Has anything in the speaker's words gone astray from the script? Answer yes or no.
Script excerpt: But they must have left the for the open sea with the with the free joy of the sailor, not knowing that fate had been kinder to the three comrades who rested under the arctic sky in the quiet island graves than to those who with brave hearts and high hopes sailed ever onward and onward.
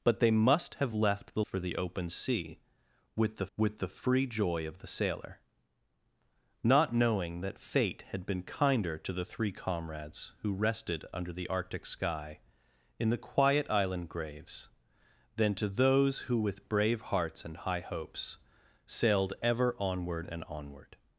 no